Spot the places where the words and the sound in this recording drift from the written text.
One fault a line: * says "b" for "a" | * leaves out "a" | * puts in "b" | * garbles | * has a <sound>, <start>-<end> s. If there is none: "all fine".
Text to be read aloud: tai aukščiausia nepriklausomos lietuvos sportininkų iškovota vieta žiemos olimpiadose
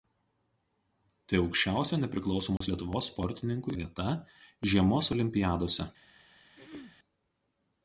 * has a dropout, 2.6-2.6 s
* leaves out "iškovota"
* has a throat clearing, 6.6-7.0 s